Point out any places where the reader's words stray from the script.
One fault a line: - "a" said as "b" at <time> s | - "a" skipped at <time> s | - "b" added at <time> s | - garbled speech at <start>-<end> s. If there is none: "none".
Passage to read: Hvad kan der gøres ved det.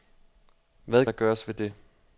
- "kan" skipped at 1.1 s